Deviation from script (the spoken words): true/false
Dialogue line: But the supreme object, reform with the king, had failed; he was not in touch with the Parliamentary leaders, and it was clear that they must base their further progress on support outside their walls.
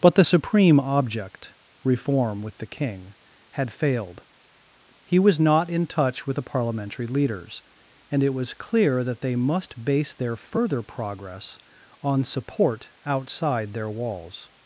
false